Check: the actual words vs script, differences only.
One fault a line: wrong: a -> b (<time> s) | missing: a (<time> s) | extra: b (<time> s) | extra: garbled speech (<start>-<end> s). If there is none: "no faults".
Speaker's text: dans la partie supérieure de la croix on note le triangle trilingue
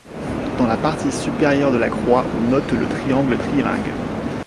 no faults